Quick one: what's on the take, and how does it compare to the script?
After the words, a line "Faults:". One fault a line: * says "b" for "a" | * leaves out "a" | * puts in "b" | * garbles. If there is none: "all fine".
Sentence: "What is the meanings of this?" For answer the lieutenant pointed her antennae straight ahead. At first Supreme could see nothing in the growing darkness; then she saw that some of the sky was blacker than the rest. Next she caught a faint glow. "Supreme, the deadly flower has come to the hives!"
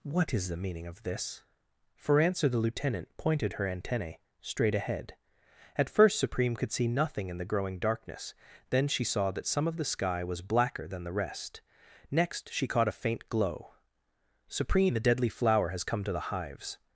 "What is the meaning of this?" For answer the lieutenant pointed her antennae straight ahead. At first Supreme could see nothing in the growing darkness; then she saw that some of the sky was blacker than the rest. Next she caught a faint glow. "Supreme, the deadly flower has come to the hives!"
Faults:
* says "meaning" for "meanings"